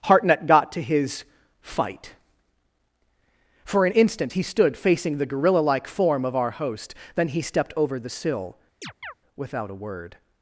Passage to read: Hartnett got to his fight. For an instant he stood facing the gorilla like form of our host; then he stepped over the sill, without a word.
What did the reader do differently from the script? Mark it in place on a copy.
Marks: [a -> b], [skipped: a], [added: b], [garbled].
Hartnett got to his fight. For an instant he stood facing the gorilla like form of our host; then he stepped over the sill, without a word.